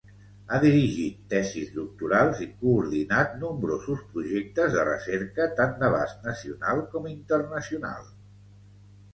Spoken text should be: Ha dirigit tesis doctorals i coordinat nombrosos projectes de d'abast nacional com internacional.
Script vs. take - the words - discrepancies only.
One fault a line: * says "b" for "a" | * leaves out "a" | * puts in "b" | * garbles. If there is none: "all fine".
* puts in "recerca tant"